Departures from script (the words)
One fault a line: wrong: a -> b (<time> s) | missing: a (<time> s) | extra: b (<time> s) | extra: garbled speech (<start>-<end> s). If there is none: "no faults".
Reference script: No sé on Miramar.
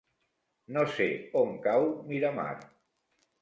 extra: cau (1.7 s)